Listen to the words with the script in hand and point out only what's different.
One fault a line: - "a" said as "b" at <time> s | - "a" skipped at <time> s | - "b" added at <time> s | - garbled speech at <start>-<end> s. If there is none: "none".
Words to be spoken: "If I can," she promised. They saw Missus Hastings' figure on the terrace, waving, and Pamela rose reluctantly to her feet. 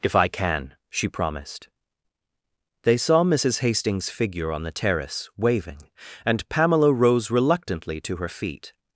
none